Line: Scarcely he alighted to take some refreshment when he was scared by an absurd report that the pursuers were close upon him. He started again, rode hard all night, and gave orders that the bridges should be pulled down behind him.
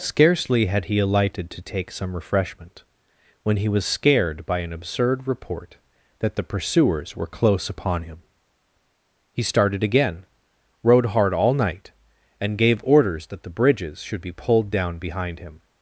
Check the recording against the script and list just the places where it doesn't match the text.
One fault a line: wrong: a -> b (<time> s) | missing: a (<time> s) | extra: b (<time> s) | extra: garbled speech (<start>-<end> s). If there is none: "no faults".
extra: had (0.7 s)